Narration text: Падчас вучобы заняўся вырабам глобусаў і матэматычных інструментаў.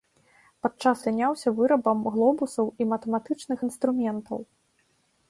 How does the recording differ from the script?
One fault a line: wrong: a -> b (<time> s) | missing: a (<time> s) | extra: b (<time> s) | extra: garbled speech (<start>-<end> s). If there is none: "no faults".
missing: вучобы (1.0 s)